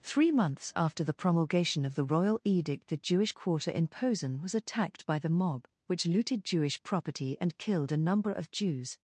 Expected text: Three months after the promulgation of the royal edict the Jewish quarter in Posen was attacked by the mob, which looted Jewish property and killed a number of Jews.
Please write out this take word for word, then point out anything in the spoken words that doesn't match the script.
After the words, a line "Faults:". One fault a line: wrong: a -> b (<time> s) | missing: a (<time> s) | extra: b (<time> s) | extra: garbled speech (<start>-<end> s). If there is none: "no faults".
Three months after the promulgation of the royal edict the Jewish quarter in Posen was attacked by the mob, which looted Jewish property and killed a number of Jews.
Faults:
no faults